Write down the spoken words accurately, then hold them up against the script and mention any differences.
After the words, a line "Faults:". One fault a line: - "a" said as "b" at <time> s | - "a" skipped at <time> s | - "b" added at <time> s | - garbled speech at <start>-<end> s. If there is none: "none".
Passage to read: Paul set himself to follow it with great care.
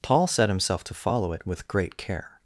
Paul set himself to follow it with great care.
Faults:
none